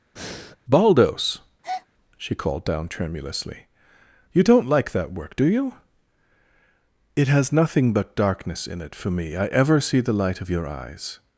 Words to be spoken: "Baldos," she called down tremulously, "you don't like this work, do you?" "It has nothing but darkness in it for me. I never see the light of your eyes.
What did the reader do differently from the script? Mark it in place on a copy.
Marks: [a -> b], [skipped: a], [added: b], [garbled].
"Baldos," she called down tremulously, "you don't like [this -> that] work, do you?" "It has nothing but darkness in it for me. I [never -> ever] see the light of your eyes.